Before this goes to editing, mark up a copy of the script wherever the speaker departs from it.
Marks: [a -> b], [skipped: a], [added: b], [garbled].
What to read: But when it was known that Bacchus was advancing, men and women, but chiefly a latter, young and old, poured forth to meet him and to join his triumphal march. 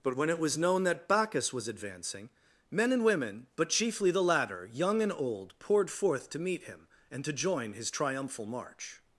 But when it was known that Bacchus was advancing, men and women, but chiefly [a -> the] latter, young and old, poured forth to meet him and to join his triumphal march.